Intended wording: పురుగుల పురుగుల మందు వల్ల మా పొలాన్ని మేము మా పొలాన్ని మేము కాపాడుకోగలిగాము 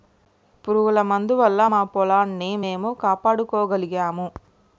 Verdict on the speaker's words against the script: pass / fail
fail